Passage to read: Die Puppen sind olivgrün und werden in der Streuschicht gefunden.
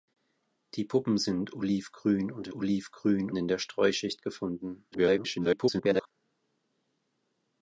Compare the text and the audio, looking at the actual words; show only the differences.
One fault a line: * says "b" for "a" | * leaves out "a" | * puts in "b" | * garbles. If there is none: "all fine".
* says "olivgrün" for "werden"
* garbles